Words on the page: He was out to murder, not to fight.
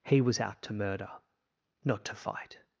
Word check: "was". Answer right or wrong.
right